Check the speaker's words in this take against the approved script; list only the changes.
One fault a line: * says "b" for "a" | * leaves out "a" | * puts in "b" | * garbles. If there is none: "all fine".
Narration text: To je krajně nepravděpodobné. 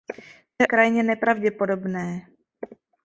all fine